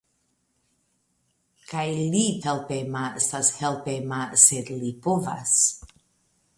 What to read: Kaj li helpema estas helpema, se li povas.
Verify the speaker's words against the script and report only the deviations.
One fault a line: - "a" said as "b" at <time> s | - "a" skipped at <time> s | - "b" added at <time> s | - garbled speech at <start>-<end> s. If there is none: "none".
none